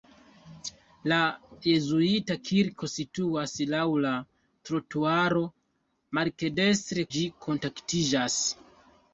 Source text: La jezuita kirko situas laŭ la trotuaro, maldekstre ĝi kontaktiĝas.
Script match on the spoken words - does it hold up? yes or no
yes